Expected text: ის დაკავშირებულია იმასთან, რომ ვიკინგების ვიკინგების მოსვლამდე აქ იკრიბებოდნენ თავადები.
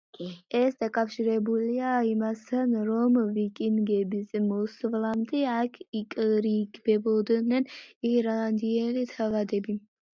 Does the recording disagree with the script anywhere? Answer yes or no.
yes